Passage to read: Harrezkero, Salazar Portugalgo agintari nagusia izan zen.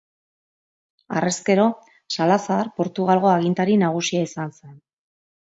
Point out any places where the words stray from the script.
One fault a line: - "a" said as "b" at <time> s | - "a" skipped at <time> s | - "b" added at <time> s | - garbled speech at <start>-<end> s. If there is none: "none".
none